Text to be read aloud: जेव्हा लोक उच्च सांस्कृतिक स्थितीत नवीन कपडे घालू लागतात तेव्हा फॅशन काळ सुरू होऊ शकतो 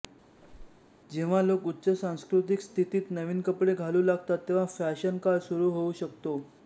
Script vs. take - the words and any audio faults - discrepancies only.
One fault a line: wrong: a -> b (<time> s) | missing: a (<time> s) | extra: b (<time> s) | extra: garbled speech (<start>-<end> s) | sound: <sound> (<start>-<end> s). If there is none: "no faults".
sound: squeak (0.4-0.9 s)